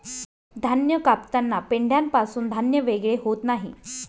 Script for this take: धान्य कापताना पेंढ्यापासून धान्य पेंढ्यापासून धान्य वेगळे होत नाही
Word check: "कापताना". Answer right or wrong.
right